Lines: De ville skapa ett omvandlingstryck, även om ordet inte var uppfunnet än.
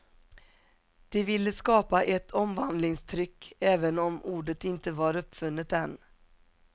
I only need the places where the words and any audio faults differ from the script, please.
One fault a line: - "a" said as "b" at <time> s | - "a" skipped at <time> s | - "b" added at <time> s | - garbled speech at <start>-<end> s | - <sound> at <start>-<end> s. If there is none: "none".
none